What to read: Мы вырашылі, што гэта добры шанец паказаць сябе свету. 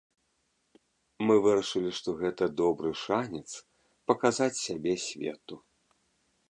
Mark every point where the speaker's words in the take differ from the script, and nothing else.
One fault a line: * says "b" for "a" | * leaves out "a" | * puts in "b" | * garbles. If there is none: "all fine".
all fine